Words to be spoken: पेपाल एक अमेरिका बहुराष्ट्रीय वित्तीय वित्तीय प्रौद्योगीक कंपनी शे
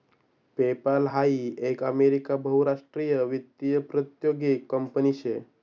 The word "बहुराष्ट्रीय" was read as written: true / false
true